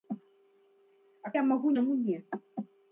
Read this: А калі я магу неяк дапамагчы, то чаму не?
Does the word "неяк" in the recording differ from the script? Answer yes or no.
yes